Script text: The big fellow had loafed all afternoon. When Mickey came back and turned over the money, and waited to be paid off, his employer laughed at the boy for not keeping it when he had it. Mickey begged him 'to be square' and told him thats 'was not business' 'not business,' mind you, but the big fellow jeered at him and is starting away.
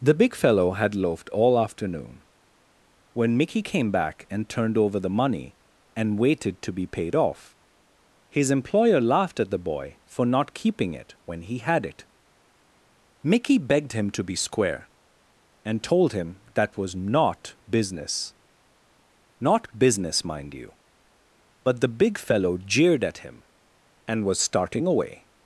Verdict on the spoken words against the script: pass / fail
fail